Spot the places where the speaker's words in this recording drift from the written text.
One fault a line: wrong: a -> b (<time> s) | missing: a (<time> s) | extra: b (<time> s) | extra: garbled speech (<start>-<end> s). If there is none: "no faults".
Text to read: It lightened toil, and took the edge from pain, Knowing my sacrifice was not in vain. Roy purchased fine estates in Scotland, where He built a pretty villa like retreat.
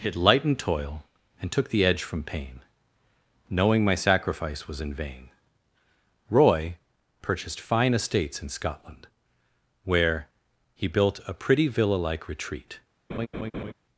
missing: not (4.8 s)